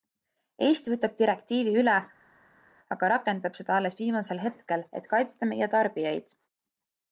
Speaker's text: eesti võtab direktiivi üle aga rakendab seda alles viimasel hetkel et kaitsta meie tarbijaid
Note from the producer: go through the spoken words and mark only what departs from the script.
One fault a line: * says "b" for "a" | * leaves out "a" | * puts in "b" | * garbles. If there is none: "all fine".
all fine